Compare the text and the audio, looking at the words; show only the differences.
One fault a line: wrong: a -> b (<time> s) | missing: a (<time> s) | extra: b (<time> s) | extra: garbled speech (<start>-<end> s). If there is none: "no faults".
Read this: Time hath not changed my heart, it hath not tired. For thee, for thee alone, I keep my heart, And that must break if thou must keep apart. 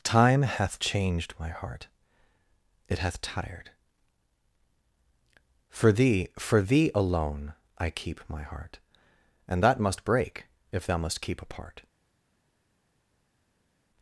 missing: not (0.8 s)
missing: not (3.2 s)